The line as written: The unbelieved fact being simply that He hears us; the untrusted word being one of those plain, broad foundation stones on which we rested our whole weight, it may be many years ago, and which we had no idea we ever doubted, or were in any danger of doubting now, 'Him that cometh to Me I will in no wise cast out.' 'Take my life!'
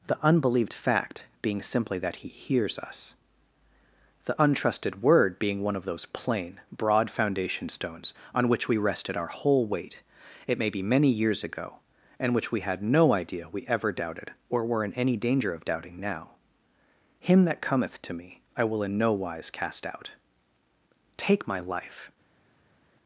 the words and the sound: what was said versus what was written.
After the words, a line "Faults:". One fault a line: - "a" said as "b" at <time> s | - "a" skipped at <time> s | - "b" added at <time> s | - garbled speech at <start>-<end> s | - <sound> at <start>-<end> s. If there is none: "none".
The unbelieved fact being simply that He hears us; the untrusted word being one of those plain, broad foundation stones on which we rested our whole weight, it may be many years ago, and which we had no idea we ever doubted, or were in any danger of doubting now, 'Him that cometh to Me I will in no wise cast out.' 'Take my life!'
Faults:
none